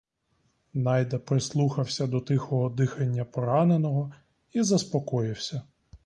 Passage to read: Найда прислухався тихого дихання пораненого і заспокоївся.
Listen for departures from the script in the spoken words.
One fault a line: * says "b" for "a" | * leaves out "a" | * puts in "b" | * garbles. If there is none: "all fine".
* puts in "до"